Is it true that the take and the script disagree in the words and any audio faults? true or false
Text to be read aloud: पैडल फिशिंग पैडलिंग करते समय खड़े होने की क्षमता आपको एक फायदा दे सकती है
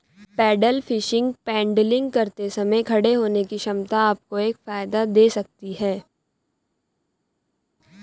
false